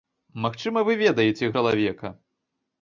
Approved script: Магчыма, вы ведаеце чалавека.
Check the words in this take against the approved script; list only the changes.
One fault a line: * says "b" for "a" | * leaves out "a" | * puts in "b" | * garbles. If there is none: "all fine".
all fine